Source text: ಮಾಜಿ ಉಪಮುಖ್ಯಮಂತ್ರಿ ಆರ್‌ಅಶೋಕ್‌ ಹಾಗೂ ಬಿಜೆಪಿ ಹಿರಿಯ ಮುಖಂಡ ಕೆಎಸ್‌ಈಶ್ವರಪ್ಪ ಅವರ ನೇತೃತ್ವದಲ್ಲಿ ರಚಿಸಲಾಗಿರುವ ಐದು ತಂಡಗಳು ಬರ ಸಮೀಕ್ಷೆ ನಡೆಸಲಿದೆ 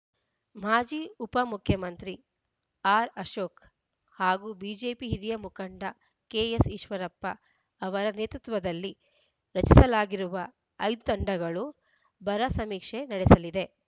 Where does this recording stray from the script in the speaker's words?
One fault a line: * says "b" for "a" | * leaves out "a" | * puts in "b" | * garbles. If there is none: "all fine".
all fine